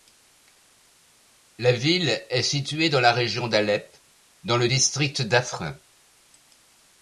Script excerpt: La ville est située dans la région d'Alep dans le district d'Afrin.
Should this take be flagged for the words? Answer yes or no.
no